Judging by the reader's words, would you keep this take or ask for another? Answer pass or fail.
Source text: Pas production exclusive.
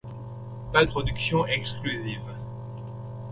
pass